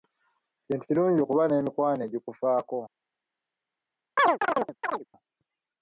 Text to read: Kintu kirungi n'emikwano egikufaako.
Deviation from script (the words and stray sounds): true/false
true